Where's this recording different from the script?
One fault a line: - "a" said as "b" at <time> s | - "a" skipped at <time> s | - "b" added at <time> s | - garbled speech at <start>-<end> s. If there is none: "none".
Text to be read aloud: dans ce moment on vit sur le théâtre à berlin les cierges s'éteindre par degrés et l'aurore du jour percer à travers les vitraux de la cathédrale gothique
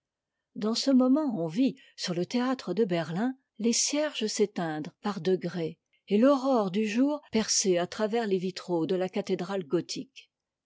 - "à" said as "de" at 2.7 s